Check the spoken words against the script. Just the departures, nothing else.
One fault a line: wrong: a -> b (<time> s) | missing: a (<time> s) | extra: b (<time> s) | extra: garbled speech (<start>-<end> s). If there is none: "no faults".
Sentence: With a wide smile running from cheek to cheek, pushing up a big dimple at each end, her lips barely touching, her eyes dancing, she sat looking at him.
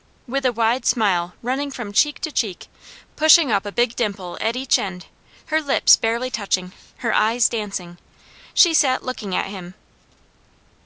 no faults